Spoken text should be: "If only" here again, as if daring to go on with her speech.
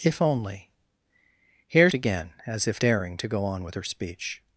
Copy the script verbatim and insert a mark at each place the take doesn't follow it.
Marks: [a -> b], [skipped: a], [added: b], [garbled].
"If only" here again, as if daring to go on with her speech.